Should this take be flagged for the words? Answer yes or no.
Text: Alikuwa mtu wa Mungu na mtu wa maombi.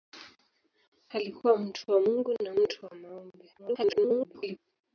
yes